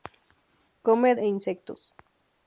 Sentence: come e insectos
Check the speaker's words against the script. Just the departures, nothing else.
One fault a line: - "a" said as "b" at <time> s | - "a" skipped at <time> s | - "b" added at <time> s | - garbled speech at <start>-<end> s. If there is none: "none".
none